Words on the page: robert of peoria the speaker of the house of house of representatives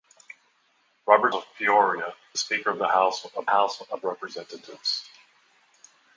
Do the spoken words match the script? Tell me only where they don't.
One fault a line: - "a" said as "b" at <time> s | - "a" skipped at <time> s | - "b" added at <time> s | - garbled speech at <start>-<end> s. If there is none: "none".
none